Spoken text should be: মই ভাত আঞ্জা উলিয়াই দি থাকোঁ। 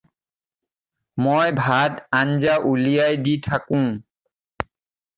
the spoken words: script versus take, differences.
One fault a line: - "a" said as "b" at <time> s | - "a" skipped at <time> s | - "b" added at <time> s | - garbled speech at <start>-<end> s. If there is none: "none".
none